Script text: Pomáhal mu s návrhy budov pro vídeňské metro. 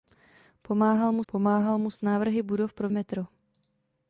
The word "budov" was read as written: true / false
true